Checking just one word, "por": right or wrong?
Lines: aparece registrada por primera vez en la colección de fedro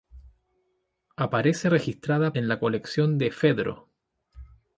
wrong